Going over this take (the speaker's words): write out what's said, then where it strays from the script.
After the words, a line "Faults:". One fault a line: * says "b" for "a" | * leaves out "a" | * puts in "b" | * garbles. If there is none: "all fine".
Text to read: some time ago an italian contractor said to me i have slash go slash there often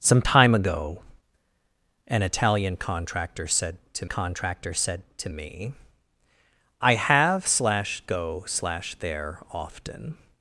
some time ago an italian contractor said to contractor said to me i have slash go slash there often
Faults:
* puts in "contractor said to"